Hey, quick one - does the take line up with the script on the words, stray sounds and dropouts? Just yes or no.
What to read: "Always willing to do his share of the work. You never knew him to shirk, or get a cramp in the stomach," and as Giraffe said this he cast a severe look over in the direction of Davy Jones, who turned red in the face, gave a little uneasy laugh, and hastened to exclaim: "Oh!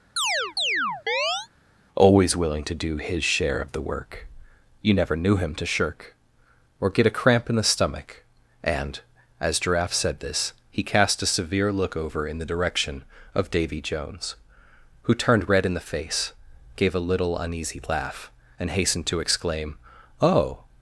no